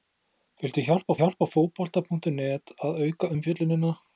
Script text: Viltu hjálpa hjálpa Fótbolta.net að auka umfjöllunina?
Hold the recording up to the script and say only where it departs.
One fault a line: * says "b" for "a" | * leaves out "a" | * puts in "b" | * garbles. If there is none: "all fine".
all fine